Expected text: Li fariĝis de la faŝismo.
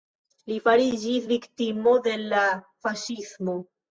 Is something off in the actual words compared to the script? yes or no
yes